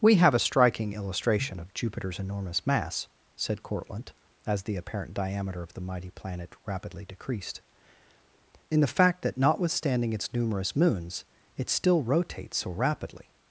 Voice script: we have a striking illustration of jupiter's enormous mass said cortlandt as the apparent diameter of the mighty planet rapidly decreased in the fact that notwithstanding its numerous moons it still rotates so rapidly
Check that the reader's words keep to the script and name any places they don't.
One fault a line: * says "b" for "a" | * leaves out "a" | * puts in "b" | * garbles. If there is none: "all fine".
all fine